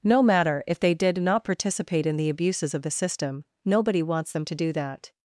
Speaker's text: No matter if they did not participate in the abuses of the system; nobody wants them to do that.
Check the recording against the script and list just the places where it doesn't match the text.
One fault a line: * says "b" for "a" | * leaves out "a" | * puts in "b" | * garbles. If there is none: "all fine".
all fine